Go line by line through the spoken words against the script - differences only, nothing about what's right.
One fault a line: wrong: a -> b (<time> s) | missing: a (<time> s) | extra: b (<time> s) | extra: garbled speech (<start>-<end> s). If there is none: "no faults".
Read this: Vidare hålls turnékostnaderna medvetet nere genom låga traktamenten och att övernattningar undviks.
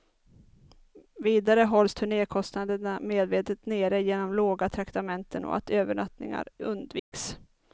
no faults